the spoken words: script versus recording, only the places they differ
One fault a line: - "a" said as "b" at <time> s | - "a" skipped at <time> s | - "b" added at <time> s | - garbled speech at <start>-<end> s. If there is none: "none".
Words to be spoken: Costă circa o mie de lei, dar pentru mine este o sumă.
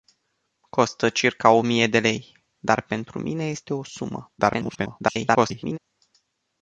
- garbled speech at 4.4-5.8 s